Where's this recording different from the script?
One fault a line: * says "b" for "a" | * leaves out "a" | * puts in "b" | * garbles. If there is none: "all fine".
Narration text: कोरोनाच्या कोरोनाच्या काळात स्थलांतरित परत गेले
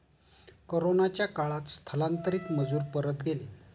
* leaves out "कोरोनाच्या"
* puts in "मजूर"